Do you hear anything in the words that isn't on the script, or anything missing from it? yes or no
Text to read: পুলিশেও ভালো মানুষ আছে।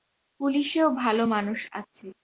no